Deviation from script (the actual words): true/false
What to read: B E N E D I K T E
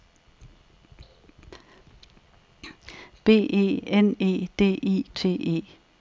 true